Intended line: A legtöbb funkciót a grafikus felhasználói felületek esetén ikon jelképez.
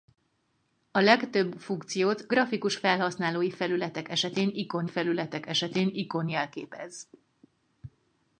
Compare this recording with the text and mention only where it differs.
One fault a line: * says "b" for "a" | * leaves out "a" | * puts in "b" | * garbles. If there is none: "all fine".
* leaves out "a"
* puts in "felületek esetén ikon"